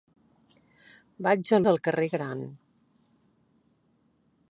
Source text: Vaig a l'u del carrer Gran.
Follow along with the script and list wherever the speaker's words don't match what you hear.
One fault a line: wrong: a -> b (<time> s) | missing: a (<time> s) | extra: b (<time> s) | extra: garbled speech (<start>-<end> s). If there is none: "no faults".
missing: l'u (1.6 s)